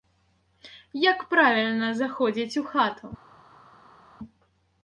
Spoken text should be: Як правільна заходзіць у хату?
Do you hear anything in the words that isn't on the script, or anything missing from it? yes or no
no